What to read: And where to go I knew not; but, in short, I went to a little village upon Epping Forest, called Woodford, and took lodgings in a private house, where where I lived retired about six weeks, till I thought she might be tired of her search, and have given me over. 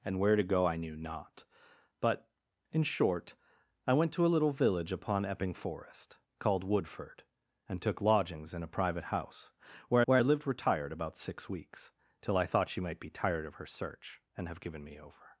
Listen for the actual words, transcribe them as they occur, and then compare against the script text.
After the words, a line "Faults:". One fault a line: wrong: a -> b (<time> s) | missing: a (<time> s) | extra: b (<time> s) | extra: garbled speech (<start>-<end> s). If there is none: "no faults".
And where to go I knew not; but, in short, I went to a little village upon Epping Forest, called Woodford, and took lodgings in a private house, where where I lived retired about six weeks, till I thought she might be tired of her search, and have given me over.
Faults:
no faults